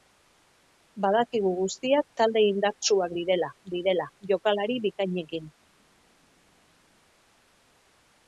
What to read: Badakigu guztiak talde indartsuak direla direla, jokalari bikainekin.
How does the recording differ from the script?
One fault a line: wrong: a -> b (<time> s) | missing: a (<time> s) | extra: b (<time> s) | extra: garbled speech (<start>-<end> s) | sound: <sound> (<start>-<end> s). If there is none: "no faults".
no faults